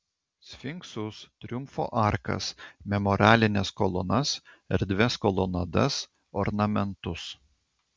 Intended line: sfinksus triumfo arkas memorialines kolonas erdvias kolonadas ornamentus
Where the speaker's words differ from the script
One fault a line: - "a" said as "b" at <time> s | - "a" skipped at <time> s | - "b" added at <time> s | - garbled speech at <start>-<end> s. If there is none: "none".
none